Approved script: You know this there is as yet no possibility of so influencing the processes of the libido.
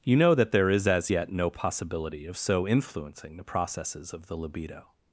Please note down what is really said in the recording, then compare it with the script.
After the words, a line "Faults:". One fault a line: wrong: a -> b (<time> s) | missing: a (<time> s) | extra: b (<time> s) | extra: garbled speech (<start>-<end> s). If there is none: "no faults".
You know that there is as yet no possibility of so influencing the processes of the libido.
Faults:
wrong: this -> that (0.3 s)